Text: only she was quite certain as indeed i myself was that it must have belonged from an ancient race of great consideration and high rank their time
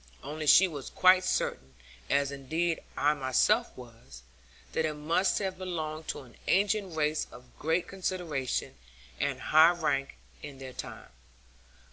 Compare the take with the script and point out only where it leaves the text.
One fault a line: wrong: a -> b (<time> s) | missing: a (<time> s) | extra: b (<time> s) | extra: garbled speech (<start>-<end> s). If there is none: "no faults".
wrong: from -> to (6.1 s)
extra: in (10.4 s)